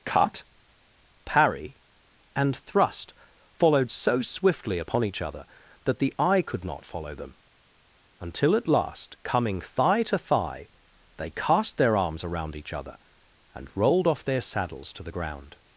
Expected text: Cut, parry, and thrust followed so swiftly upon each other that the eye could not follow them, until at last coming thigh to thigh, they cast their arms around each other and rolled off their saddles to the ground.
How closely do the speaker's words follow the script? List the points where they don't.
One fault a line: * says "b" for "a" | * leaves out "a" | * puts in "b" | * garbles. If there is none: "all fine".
all fine